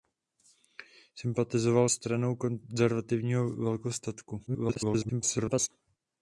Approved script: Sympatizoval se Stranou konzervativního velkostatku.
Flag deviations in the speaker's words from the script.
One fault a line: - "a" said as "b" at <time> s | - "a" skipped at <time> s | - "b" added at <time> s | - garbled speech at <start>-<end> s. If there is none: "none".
- "se" skipped at 1.9 s
- garbled speech at 4.5-5.7 s